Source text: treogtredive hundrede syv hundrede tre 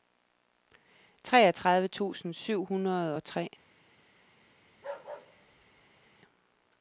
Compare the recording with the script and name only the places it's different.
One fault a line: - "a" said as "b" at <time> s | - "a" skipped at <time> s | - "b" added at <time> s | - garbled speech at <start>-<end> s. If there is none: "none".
- "hundrede" said as "tusind" at 1.9 s
- "og" added at 3.1 s